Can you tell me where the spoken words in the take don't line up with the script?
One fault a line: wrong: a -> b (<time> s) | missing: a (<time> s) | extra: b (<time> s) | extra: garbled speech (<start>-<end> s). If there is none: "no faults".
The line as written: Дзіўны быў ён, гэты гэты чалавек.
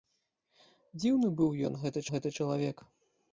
no faults